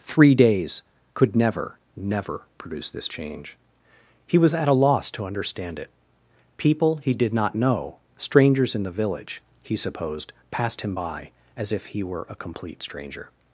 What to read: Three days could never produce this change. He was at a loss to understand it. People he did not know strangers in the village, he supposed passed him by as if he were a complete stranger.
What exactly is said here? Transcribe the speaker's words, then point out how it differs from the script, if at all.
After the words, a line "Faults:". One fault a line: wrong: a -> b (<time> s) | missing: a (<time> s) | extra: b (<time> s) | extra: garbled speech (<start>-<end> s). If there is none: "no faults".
Three days could never never produce this change. He was at a loss to understand it. People he did not know strangers in the village, he supposed passed him by as if he were a complete stranger.
Faults:
extra: never (1.9 s)